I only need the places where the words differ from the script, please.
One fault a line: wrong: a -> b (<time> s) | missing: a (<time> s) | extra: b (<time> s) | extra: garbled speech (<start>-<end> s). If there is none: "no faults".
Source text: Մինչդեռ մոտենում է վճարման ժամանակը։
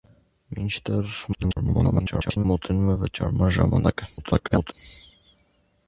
extra: garbled speech (1.3-2.5 s)
extra: garbled speech (4.2-4.7 s)